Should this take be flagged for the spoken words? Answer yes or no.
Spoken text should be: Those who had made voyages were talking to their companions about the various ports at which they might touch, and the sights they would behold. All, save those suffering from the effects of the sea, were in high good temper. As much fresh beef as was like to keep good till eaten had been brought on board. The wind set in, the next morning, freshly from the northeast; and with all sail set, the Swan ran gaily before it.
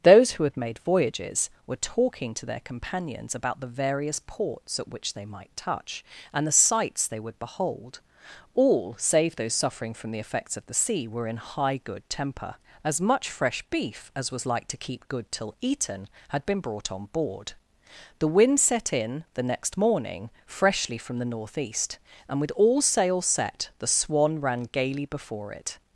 no